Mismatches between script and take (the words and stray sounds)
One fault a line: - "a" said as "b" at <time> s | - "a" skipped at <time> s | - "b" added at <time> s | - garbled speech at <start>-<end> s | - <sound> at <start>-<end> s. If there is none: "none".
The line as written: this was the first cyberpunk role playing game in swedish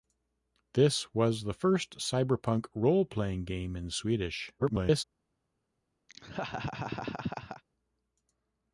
- garbled speech at 4.6-5.0 s
- laugh at 6.1-7.6 s